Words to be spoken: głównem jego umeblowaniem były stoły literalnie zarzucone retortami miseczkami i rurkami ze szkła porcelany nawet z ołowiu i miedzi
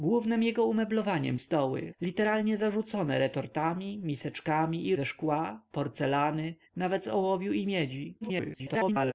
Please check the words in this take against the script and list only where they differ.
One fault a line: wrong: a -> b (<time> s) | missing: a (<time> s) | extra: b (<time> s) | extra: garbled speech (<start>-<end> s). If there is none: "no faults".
missing: były (1.4 s)
missing: rurkami (5.0 s)
extra: garbled speech (8.2-9.1 s)